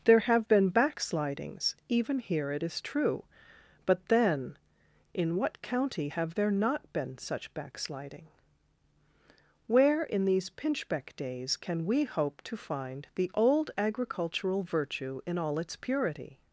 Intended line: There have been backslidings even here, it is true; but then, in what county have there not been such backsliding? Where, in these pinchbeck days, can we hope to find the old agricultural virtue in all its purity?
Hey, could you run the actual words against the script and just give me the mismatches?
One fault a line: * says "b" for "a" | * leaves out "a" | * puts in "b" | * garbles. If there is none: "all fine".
all fine